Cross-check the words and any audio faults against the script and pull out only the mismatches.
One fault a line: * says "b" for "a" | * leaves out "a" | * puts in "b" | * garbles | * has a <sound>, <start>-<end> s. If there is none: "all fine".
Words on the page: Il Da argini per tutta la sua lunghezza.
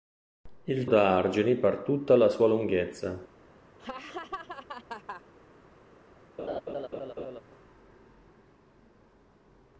* has a laugh, 3.8-5.2 s
* has a laugh, 6.4-7.4 s